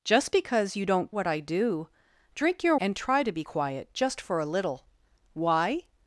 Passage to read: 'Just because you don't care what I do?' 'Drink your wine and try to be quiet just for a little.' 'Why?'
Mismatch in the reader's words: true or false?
true